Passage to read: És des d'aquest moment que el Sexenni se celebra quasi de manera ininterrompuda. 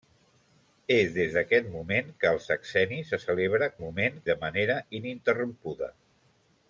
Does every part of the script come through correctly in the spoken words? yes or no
no